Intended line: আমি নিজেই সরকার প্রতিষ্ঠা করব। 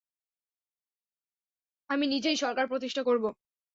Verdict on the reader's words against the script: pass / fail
pass